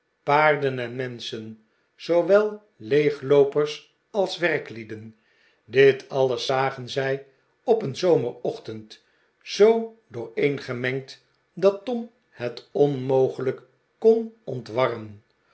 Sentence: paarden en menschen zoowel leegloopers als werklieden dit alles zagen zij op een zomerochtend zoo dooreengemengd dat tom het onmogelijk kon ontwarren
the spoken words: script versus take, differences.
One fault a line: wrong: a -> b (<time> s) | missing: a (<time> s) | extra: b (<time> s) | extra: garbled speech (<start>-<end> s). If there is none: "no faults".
no faults